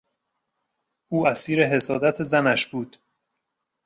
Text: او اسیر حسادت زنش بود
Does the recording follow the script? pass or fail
pass